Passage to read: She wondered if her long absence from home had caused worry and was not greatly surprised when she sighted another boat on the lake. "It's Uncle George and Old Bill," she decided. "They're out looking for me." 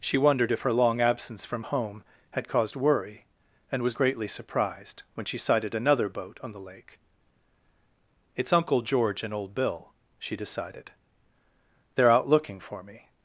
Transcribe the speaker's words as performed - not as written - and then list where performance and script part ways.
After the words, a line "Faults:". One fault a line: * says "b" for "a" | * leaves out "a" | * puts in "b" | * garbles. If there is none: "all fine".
She wondered if her long absence from home had caused worry and was greatly surprised when she sighted another boat on the lake. "It's Uncle George and Old Bill," she decided. "They're out looking for me."
Faults:
* leaves out "not"